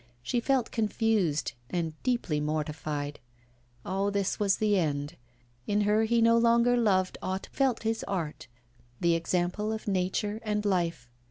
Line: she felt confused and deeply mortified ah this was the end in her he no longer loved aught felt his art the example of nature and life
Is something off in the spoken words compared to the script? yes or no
no